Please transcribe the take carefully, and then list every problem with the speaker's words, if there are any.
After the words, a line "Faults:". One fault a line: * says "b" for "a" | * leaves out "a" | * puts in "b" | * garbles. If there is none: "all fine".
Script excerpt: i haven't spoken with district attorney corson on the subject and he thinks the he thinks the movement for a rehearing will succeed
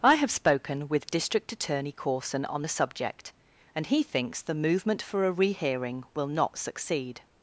i have spoken with district attorney corson on the subject and he thinks the movement for a rehearing will not succeed
Faults:
* says "have" for "haven't"
* leaves out "he thinks the"
* puts in "not"